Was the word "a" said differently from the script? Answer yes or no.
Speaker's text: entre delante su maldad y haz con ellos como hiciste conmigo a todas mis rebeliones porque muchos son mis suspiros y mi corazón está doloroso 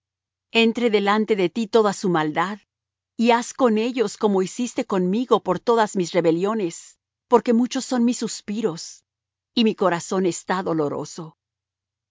yes